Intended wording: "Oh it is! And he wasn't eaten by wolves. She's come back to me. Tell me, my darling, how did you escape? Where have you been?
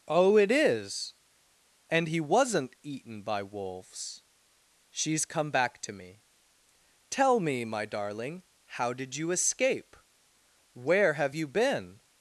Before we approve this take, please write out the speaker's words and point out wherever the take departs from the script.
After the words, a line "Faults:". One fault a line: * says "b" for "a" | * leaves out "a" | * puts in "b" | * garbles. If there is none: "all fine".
"Oh it is! And he wasn't eaten by wolves. She's come back to me. Tell me, my darling, how did you escape? Where have you been?
Faults:
all fine